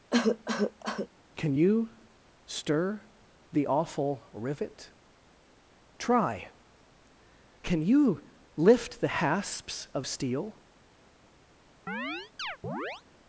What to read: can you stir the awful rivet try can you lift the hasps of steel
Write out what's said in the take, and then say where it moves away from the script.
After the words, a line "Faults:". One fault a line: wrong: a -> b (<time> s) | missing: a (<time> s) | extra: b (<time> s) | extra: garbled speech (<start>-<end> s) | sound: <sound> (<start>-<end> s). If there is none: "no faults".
can you stir the awful rivet try can you lift the hasps of steel
Faults:
sound: cough (0.1-1.1 s)
sound: chirp (11.9-13.0 s)